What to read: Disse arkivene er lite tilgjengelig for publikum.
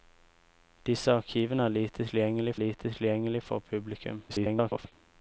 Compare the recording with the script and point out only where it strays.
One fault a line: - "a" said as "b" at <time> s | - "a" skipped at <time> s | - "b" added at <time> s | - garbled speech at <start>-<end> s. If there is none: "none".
- "lite tilgjengelig" added at 2.5 s
- garbled speech at 4.3-4.9 s